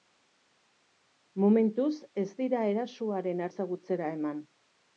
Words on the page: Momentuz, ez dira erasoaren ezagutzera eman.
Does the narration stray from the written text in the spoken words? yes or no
no